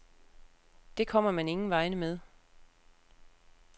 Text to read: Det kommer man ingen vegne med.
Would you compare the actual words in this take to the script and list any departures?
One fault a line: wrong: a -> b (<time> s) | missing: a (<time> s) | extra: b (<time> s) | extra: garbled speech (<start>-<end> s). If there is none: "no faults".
no faults